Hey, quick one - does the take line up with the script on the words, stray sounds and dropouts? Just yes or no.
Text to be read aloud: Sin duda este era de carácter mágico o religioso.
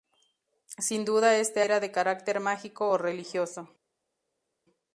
yes